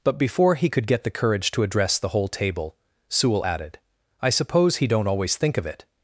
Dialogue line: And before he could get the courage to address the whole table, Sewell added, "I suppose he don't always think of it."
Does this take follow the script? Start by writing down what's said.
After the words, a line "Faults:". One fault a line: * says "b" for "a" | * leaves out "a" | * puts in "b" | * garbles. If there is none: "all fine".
But before he could get the courage to address the whole table, Sewell added, "I suppose he don't always think of it."
Faults:
* says "But" for "And"